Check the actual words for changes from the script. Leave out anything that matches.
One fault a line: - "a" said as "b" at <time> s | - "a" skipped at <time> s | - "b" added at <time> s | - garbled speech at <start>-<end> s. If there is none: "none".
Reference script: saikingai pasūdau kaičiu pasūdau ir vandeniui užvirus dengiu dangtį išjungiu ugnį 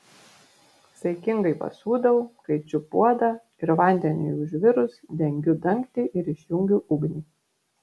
- "pasūdau" said as "puodą" at 3.0 s
- "ir" added at 6.2 s